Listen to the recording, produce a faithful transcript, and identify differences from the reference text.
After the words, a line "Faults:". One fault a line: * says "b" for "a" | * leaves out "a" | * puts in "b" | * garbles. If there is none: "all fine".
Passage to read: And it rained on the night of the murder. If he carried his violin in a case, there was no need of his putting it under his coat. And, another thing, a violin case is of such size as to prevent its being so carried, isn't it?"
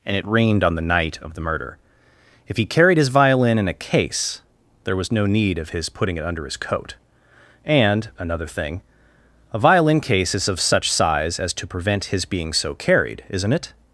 And it rained on the night of the murder. If he carried his violin in a case, there was no need of his putting it under his coat. And, another thing, a violin case is of such size as to prevent his being so carried, isn't it?"
Faults:
* says "his" for "its"